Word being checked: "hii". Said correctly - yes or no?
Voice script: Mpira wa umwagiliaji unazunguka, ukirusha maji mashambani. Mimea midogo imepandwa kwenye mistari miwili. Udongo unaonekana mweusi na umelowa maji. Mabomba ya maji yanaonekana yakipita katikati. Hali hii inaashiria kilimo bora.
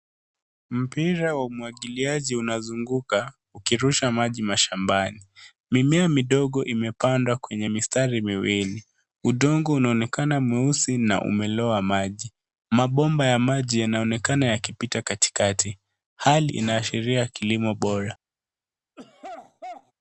no